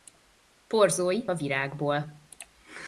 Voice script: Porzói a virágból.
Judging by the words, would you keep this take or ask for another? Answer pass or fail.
pass